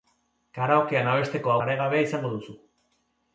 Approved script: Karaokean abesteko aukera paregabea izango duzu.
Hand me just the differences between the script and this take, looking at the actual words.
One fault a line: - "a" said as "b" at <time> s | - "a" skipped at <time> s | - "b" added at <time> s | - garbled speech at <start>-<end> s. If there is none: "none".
- "aukera" skipped at 1.6 s